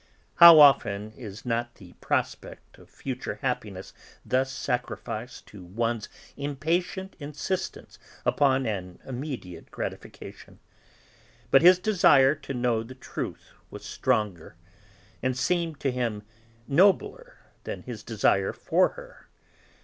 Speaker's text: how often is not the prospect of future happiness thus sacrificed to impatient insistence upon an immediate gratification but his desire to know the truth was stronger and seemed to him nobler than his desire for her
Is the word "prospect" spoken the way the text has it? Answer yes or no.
yes